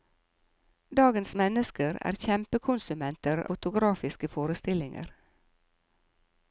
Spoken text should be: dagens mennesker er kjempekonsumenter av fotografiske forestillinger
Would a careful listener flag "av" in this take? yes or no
yes